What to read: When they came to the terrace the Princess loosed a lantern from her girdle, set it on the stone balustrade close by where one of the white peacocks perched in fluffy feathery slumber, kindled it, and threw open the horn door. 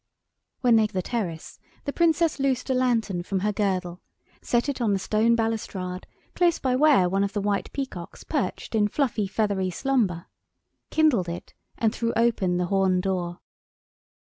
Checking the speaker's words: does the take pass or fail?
fail